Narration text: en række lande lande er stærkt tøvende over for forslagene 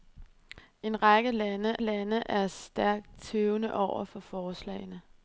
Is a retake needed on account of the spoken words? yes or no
no